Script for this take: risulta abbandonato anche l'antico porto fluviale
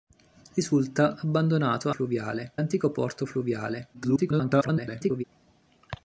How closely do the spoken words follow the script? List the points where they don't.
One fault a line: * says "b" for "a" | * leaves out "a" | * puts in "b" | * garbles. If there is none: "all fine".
* says "fluviale" for "anche"
* garbles